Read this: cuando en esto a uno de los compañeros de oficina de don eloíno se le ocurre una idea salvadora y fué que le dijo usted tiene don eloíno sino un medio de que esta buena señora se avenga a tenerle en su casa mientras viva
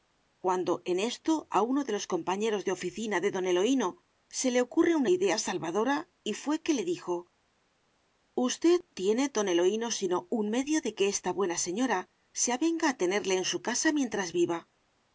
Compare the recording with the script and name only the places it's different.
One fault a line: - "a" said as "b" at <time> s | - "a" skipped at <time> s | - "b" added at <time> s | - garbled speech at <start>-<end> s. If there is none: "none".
none